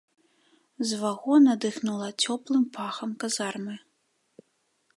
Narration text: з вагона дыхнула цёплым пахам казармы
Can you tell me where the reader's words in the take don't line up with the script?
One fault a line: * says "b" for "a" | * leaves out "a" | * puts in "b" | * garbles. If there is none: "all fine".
all fine